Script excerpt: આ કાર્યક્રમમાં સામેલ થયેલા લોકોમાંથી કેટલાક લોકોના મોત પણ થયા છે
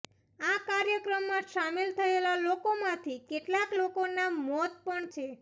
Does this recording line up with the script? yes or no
no